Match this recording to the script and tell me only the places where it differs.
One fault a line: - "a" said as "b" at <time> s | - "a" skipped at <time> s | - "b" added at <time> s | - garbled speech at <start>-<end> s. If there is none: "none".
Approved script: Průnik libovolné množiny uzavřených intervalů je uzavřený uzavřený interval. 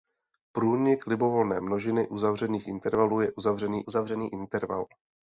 none